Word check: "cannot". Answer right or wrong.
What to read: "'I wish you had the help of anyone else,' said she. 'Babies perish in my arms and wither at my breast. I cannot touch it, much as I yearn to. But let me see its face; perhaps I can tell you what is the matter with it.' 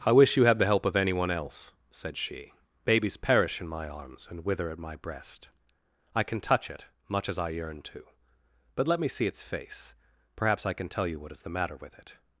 wrong